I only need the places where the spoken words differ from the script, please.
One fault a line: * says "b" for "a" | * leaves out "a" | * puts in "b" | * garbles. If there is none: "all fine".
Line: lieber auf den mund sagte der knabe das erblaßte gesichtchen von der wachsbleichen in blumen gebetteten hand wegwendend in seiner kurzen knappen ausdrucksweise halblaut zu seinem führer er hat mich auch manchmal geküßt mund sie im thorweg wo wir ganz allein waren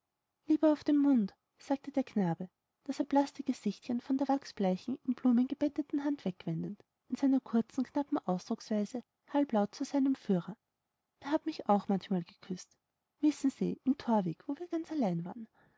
* says "wissen" for "mund"